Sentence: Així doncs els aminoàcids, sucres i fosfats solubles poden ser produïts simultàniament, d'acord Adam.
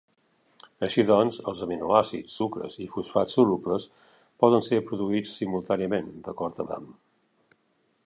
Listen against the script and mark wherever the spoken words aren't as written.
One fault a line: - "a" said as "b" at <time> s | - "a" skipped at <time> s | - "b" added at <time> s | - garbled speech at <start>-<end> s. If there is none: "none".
none